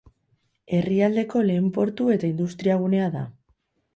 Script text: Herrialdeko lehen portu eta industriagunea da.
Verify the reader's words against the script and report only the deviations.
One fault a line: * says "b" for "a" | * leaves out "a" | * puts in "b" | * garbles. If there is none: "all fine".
all fine